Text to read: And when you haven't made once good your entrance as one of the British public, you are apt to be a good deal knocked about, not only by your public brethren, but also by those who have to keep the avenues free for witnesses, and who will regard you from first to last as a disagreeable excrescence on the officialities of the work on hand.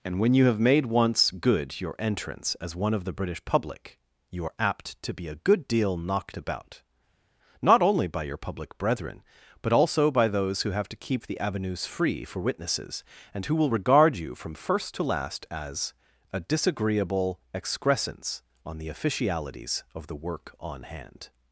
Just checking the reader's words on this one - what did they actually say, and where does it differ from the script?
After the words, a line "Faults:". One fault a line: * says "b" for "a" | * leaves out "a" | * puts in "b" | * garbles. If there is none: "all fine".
And when you have made once good your entrance as one of the British public, you are apt to be a good deal knocked about, not only by your public brethren, but also by those who have to keep the avenues free for witnesses, and who will regard you from first to last as a disagreeable excrescence on the officialities of the work on hand.
Faults:
* says "have" for "haven't"